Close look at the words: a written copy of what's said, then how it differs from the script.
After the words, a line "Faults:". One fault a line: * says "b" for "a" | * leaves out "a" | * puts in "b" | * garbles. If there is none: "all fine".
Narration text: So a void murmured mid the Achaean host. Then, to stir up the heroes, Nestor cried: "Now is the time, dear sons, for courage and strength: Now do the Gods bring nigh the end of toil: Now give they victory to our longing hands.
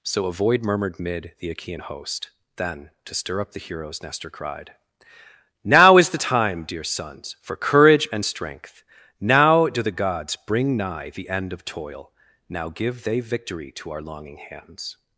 So a void murmured mid the Achaean host. Then, to stir up the heroes, Nestor cried: "Now is the time, dear sons, for courage and strength: Now do the Gods bring nigh the end of toil: Now give they victory to our longing hands.
Faults:
all fine